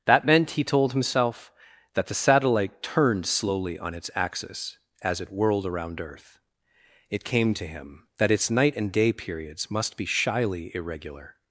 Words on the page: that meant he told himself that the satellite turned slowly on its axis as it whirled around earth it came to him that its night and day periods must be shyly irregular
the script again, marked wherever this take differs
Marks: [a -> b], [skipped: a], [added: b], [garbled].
that meant he told himself that the satellite turned slowly on its axis as it whirled around earth it came to him that its night and day periods must be shyly irregular